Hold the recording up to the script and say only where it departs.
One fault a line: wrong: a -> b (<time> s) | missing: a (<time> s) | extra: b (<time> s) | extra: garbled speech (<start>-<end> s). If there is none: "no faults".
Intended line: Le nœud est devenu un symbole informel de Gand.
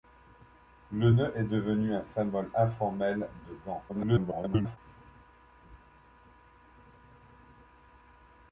extra: garbled speech (3.9-4.8 s)